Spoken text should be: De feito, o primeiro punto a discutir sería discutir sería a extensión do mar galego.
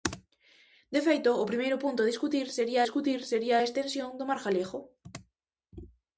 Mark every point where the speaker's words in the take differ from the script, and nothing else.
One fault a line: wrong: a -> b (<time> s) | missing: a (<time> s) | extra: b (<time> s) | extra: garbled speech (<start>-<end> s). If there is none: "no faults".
no faults